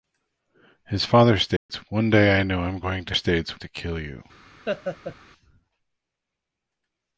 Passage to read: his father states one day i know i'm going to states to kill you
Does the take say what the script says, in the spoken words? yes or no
yes